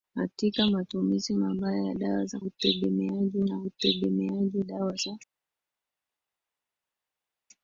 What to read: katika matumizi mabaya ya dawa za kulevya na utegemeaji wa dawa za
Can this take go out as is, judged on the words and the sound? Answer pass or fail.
fail